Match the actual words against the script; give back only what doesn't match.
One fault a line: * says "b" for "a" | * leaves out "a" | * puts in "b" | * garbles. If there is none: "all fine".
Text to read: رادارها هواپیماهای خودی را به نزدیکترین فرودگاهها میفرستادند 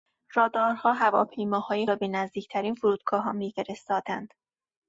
* leaves out "خودی"